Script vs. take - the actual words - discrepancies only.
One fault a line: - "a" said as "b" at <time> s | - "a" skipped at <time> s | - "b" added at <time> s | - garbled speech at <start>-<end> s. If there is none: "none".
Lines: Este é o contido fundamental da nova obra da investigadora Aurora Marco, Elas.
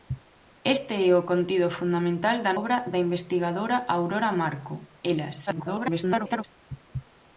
- "nova" skipped at 2.5 s
- garbled speech at 5.5-6.4 s